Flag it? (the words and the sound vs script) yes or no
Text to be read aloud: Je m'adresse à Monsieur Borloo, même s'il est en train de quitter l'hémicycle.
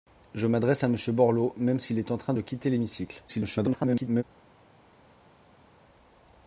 yes